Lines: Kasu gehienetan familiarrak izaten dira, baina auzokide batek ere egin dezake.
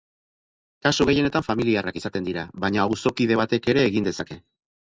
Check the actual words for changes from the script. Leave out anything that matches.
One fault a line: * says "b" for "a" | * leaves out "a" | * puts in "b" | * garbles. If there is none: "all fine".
all fine